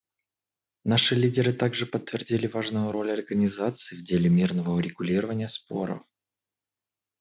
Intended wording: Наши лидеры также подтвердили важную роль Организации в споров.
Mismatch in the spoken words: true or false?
true